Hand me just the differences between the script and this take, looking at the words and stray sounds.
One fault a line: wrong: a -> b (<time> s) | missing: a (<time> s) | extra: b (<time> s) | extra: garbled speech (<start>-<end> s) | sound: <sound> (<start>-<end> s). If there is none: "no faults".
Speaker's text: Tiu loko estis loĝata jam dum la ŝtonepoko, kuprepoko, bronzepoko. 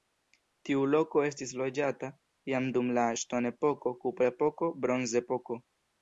no faults